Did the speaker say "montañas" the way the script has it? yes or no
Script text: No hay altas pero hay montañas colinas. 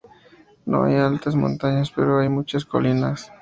no